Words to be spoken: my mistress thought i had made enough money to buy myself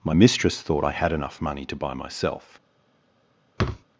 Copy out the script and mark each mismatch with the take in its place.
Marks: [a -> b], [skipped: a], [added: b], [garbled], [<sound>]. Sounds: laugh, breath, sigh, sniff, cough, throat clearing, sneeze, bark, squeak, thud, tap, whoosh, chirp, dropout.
my mistress thought i had [skipped: made] enough money to buy myself [thud]